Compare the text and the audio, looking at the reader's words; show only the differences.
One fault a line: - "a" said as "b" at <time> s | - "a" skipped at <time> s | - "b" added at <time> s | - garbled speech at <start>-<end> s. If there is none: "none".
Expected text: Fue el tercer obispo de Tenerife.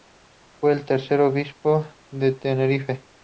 none